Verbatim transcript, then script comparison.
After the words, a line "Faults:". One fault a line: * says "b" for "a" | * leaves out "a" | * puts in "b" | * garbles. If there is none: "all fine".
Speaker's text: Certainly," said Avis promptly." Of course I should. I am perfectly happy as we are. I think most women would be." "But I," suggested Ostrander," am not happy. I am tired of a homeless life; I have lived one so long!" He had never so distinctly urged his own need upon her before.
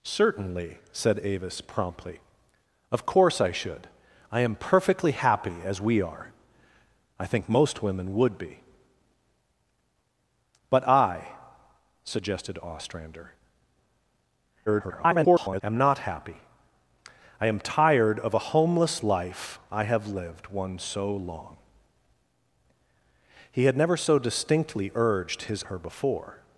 Certainly," said Avis promptly." Of course I should. I am perfectly happy as we are. I think most women would be." "But I," suggested Ostrander," [garbled] am not happy. I am tired of a homeless life; I have lived one so long!" He had never so distinctly urged his her before.
Faults:
* garbles
* leaves out "own need upon"